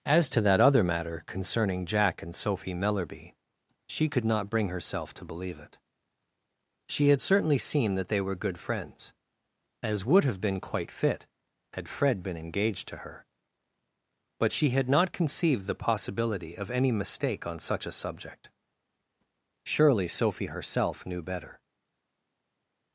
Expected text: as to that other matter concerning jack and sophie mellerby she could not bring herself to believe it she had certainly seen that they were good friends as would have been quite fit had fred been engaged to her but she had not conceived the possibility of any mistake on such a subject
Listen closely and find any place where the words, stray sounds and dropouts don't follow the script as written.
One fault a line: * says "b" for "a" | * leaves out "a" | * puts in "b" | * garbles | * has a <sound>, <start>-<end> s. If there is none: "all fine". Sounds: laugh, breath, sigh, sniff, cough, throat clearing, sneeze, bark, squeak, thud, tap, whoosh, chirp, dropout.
* puts in "surely sophie herself knew better"